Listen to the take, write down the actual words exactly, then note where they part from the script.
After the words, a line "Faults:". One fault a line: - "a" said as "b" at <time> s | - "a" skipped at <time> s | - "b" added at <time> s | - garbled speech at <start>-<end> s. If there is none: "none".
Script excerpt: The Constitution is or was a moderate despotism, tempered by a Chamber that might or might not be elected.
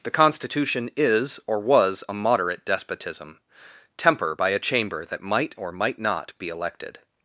The Constitution is or was a moderate despotism, temper by a Chamber that might or might not be elected.
Faults:
- "tempered" said as "temper" at 4.0 s